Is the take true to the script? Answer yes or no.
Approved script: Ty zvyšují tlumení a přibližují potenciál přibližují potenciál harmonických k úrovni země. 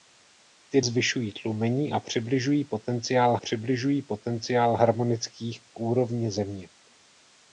yes